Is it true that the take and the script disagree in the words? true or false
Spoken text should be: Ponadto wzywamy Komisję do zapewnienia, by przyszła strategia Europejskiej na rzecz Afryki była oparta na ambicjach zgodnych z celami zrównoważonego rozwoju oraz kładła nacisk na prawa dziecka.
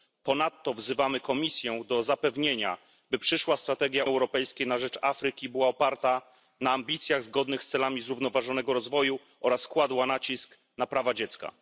false